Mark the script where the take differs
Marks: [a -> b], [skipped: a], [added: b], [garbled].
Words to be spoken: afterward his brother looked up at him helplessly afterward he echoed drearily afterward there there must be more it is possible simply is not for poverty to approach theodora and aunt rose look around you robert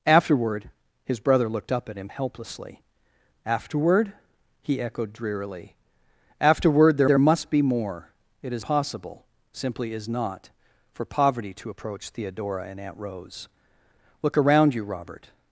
afterward his brother looked up at him helplessly afterward he echoed drearily afterward there there must be more it is possible simply is not for poverty to approach theodora and aunt rose look around you robert